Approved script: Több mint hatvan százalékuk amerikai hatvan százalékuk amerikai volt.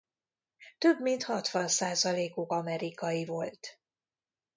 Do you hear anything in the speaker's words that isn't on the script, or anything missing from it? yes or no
yes